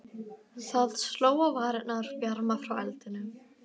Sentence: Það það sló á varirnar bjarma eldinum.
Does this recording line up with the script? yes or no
no